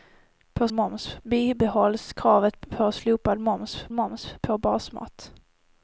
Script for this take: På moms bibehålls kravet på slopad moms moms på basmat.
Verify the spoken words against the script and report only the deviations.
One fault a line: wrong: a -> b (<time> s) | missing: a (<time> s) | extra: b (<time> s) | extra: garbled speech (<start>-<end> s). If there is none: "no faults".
no faults